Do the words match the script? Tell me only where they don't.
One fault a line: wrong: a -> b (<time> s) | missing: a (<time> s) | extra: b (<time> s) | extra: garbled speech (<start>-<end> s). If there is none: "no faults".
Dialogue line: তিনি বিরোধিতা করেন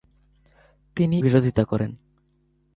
no faults